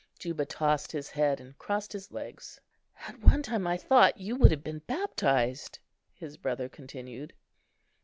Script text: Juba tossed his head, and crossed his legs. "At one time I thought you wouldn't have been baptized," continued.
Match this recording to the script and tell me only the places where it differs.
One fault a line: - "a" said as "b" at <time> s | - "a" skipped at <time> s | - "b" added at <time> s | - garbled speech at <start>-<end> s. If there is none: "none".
- "wouldn't" said as "would" at 4.3 s
- "his brother" added at 6.2 s